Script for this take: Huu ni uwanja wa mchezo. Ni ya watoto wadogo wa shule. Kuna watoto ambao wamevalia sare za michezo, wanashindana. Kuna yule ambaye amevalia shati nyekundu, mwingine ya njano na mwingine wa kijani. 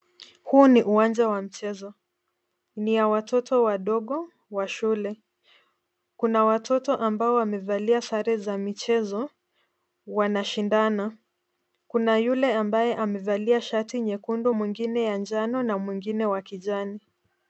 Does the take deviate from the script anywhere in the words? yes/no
no